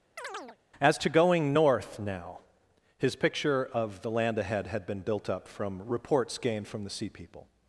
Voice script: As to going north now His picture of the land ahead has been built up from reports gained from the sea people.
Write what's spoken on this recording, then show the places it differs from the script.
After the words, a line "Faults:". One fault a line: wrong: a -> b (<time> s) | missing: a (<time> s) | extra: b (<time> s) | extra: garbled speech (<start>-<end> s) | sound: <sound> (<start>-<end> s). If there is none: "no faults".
As to going north now His picture of the land ahead had been built up from reports gained from the sea people.
Faults:
sound: chirp (0.2-0.6 s)
wrong: has -> had (4.7 s)